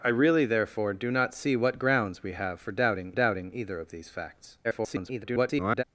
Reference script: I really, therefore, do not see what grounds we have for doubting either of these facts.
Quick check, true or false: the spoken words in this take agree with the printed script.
false